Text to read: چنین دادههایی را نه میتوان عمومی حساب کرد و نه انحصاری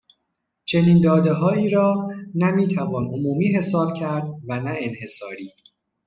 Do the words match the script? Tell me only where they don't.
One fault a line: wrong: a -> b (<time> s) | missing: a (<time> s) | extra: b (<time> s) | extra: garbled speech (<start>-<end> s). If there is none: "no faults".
no faults